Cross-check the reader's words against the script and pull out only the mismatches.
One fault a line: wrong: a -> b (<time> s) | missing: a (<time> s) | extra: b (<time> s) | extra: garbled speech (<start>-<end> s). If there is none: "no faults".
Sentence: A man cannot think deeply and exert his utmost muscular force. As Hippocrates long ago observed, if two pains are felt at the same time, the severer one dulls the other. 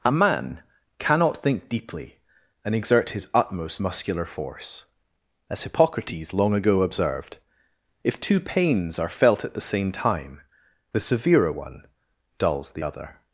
no faults